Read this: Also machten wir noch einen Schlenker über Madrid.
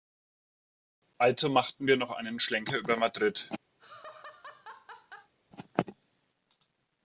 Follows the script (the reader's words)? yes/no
yes